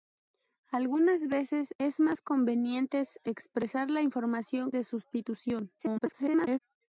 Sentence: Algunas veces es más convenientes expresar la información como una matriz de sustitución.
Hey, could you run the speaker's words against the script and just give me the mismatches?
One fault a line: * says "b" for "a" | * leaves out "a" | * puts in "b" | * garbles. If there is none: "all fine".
* leaves out "como una matriz"
* garbles